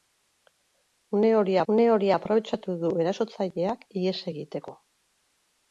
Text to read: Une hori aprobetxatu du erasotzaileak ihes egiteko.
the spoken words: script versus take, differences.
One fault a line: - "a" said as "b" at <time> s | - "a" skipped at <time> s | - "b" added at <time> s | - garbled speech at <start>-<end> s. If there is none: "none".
- "une hori" added at 1.7 s